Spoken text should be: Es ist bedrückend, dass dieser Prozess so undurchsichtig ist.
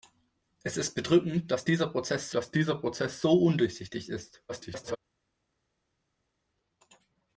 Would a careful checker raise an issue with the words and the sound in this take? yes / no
yes